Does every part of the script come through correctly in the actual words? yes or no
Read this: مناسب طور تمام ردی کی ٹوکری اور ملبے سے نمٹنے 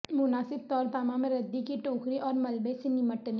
yes